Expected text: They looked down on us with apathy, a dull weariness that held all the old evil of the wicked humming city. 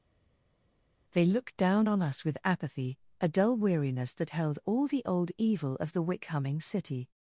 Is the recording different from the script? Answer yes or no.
yes